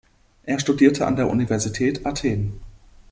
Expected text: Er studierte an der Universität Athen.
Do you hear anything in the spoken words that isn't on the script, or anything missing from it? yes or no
no